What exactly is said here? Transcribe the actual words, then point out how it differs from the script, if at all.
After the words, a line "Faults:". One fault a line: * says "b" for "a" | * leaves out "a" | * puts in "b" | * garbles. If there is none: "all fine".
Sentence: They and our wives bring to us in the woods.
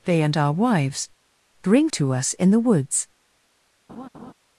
They and our wives bring to us in the woods.
Faults:
all fine